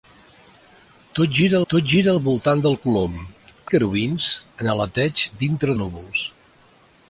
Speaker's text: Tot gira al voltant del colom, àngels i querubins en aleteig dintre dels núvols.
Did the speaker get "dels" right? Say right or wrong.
wrong